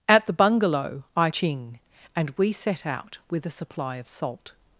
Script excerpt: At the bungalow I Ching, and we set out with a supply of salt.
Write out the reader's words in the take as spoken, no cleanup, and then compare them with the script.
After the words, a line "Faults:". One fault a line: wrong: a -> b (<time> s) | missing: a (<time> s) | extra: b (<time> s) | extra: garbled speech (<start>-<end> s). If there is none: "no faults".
At the bungalow I Ching, and we set out with a supply of salt.
Faults:
no faults